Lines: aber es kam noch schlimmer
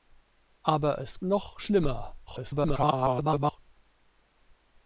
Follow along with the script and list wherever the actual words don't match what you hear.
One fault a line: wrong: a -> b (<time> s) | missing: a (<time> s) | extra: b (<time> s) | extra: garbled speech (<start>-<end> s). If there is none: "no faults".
missing: kam (1.2 s)
extra: garbled speech (2.3-3.6 s)